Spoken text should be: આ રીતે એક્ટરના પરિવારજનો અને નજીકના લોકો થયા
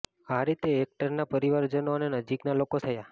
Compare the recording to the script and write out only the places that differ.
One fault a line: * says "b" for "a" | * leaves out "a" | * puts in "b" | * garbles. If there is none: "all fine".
all fine